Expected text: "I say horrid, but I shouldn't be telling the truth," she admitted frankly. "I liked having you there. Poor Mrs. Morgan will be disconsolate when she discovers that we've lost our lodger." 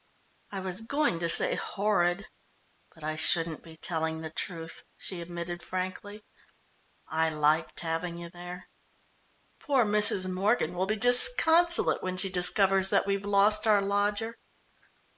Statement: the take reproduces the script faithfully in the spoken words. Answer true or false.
false